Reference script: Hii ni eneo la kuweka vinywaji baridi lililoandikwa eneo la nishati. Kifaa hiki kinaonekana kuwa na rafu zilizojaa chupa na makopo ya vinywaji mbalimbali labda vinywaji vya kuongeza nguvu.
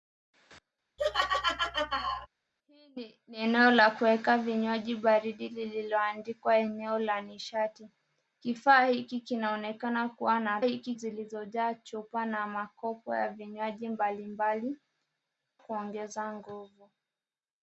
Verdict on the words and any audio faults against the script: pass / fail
fail